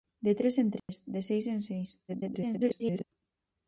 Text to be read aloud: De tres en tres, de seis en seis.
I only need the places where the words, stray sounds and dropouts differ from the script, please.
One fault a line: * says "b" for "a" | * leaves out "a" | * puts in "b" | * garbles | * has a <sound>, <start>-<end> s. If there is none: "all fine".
* has a dropout, 0.8-0.9 s
* garbles